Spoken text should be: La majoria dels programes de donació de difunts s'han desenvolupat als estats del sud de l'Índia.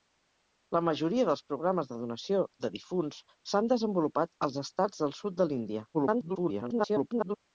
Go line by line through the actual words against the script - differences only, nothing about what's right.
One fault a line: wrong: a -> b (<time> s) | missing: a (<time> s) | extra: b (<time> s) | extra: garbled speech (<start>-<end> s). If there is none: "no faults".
extra: garbled speech (5.9-7.4 s)